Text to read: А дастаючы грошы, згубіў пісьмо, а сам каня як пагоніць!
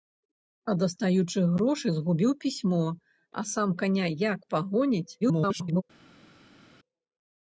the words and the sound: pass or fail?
fail